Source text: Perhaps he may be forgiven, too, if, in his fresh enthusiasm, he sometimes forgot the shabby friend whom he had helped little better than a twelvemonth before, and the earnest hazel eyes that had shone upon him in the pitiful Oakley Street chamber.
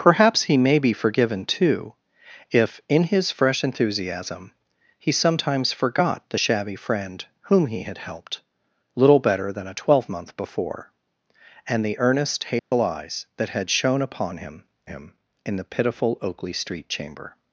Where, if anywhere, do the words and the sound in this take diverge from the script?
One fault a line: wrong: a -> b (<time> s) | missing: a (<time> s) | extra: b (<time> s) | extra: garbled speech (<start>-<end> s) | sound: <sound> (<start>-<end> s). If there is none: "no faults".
sound: dropout (12.6-12.7 s)
extra: him (14.9 s)